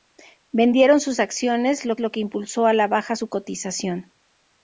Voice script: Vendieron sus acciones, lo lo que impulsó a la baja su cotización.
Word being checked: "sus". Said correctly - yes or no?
yes